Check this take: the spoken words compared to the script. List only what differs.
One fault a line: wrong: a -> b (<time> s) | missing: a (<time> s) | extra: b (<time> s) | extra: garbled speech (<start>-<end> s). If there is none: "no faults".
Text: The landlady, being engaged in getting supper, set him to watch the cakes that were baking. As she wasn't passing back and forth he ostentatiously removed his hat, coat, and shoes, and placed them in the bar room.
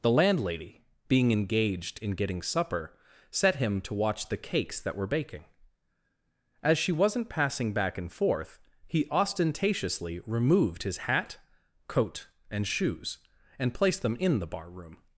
no faults